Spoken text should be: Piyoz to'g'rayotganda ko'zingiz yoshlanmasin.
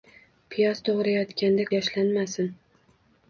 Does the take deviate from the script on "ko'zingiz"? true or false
true